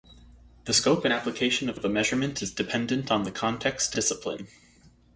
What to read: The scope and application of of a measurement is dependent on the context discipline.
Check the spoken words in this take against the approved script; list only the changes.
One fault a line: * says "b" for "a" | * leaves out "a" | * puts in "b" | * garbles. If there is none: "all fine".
all fine